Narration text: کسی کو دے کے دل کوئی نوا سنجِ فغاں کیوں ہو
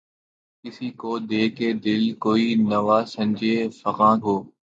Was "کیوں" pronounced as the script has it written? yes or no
no